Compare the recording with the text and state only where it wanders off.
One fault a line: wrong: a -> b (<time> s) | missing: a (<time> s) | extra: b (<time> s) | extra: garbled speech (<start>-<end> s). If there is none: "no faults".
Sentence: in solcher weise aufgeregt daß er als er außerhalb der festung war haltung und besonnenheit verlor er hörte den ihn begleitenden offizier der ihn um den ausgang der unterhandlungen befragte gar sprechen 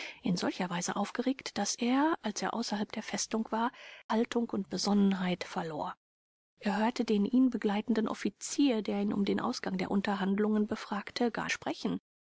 no faults